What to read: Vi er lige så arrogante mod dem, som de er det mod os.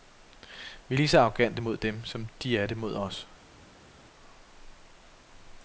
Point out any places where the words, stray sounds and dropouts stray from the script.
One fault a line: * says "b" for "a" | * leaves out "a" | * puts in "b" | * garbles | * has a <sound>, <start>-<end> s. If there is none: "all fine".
all fine